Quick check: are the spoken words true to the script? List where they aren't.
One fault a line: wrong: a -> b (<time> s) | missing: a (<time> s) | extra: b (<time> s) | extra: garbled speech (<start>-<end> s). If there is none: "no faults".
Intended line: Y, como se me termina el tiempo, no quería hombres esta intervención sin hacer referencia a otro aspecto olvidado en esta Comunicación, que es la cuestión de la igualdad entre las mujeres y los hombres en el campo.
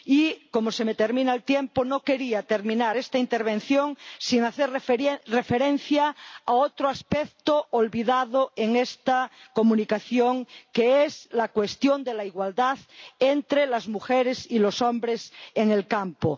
wrong: hombres -> terminar (2.4 s)